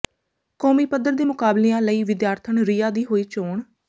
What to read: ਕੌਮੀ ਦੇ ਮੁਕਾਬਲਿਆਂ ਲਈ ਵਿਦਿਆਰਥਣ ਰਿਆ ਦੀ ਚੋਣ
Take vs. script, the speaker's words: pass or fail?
fail